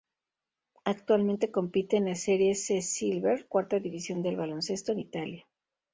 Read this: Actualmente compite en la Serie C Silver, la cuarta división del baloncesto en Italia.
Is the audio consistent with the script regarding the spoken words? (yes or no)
no